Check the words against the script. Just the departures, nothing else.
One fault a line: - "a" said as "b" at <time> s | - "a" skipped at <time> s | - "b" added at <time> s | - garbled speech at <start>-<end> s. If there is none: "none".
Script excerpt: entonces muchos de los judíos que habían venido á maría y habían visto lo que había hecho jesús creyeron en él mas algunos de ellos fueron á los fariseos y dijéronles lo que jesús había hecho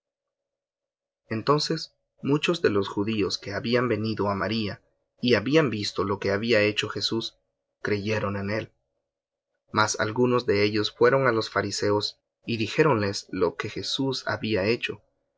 none